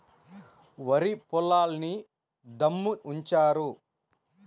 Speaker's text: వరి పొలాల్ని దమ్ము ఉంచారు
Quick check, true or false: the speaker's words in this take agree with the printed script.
true